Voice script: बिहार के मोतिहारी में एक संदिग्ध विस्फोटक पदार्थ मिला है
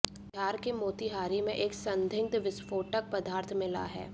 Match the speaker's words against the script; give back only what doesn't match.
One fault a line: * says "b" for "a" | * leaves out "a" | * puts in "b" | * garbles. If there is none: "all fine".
all fine